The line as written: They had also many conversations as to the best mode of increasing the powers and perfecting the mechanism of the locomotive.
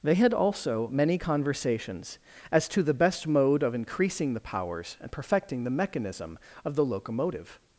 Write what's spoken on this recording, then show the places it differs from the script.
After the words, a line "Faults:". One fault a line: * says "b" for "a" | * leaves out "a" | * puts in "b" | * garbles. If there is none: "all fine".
They had also many conversations as to the best mode of increasing the powers and perfecting the mechanism of the locomotive.
Faults:
all fine